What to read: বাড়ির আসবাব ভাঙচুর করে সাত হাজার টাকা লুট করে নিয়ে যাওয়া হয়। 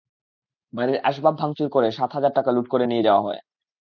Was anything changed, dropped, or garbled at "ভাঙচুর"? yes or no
no